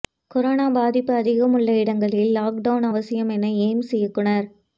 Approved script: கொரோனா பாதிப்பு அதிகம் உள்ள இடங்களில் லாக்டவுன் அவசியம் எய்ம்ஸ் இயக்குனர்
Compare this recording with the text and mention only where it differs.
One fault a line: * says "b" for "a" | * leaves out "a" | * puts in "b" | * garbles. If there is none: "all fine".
* puts in "என"